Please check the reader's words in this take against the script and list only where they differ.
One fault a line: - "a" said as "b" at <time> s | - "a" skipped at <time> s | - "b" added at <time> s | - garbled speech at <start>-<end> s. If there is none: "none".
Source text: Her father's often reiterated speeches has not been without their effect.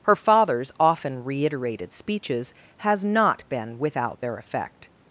none